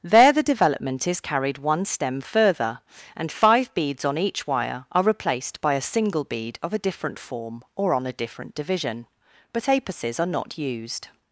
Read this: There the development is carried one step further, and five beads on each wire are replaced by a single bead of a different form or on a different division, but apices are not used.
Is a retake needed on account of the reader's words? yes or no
yes